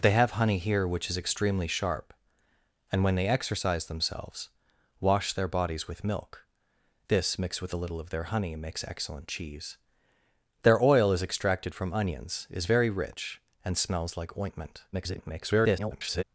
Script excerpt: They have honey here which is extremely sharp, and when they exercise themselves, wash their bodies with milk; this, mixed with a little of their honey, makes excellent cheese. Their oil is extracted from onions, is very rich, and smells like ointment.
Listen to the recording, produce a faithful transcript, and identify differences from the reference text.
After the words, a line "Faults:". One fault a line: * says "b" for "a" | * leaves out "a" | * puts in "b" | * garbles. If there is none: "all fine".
They have honey here which is extremely sharp, and when they exercise themselves, wash their bodies with milk; this, mixed with a little of their honey, makes excellent cheese. Their oil is extracted from onions, is very rich, and smells like ointment. [garbled]
Faults:
* garbles